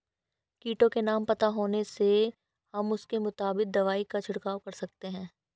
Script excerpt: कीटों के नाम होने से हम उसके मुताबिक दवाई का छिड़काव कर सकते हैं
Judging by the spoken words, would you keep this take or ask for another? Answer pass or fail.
fail